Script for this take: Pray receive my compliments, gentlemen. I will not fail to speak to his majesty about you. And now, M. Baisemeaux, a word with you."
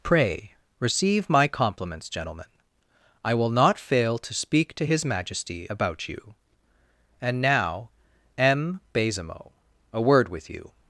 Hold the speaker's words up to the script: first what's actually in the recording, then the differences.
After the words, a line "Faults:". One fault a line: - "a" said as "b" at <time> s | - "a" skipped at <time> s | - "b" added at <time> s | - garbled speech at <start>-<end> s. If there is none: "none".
Pray receive my compliments, gentlemen. I will not fail to speak to his majesty about you. And now, M. Baisemeaux, a word with you."
Faults:
none